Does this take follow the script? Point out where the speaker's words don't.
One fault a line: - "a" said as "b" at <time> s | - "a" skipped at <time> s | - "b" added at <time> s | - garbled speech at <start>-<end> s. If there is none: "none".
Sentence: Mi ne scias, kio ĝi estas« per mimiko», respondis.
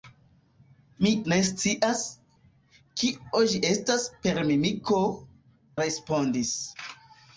none